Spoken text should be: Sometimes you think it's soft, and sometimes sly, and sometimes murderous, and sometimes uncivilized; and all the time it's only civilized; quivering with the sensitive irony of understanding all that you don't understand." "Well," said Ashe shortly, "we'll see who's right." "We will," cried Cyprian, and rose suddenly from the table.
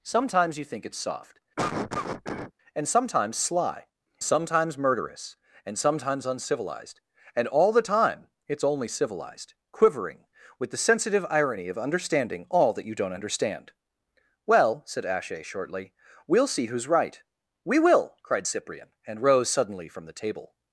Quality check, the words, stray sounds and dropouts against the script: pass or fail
fail